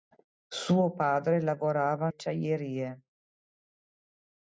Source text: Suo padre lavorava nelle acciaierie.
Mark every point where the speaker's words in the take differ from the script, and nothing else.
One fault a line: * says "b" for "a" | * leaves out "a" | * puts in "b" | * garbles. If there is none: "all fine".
* leaves out "nelle"